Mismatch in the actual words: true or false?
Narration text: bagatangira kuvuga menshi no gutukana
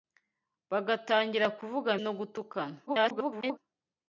true